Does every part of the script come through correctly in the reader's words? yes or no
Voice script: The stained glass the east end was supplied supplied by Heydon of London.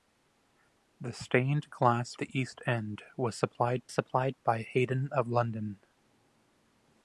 yes